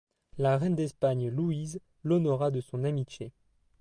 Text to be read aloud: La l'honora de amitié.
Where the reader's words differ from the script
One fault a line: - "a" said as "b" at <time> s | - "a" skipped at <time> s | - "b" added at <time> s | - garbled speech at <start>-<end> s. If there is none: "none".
- "reine d'Espagne Louise" added at 0.6 s
- "son" added at 2.6 s